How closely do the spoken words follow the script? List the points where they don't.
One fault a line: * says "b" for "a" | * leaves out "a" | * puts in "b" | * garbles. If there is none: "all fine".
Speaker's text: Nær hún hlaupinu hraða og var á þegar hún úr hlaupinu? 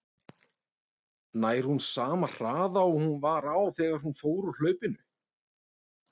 * says "sama" for "hlaupinu"
* puts in "hún"
* puts in "fór"